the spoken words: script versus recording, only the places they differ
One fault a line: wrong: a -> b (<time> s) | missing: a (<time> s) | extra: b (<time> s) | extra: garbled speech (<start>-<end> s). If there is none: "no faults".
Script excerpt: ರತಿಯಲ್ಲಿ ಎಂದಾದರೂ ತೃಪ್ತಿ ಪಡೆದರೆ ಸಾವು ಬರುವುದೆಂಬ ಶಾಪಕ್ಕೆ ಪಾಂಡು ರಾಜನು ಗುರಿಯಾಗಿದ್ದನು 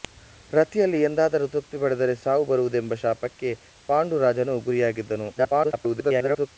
extra: garbled speech (5.4-6.5 s)